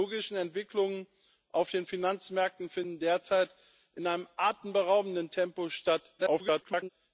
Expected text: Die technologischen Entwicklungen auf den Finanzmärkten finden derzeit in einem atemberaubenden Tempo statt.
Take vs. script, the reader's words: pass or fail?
fail